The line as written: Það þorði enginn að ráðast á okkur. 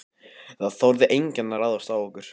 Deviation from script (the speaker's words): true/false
false